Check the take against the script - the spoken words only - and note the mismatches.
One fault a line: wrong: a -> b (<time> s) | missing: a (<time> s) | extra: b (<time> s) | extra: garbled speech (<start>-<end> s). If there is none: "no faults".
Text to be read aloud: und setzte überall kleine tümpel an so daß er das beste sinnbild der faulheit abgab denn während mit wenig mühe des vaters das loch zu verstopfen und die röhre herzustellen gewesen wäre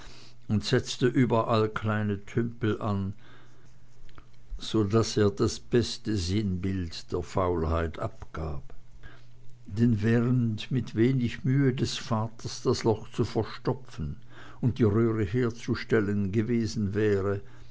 no faults